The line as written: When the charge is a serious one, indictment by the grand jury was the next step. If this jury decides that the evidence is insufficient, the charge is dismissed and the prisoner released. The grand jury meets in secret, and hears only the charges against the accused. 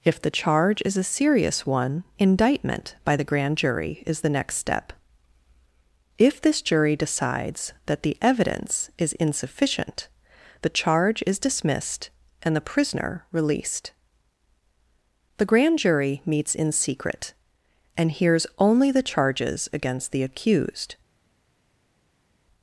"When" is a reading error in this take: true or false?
true